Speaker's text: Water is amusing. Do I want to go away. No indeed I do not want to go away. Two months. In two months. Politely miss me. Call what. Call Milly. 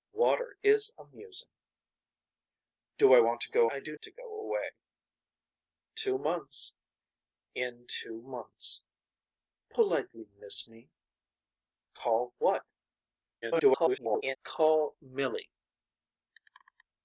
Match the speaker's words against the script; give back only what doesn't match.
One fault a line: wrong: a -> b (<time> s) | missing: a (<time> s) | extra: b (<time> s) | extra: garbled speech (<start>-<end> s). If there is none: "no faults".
missing: away No indeed (3.7 s)
missing: not want (3.9 s)
extra: garbled speech (13.4-14.4 s)